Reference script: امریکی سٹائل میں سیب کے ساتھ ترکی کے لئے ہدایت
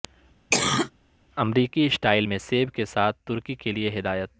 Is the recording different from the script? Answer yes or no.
no